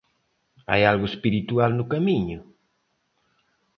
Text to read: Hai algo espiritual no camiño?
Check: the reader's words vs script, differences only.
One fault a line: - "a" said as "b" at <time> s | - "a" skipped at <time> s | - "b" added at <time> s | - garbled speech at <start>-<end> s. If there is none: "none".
none